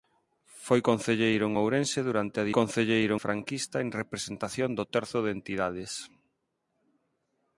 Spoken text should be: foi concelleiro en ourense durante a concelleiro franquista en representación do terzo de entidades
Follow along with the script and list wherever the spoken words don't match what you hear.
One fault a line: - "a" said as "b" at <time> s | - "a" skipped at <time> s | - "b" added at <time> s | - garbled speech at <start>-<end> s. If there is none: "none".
none